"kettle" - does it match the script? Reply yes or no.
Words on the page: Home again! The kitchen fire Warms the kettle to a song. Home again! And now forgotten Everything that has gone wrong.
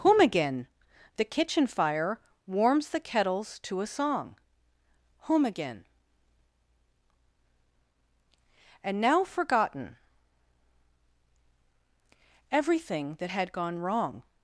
no